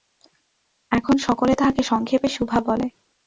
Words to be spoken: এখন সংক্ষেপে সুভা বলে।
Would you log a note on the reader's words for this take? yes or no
yes